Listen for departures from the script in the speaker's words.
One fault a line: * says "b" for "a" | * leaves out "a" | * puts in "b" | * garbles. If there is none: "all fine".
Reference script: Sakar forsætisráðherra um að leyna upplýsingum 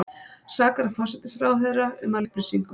* leaves out "leyna"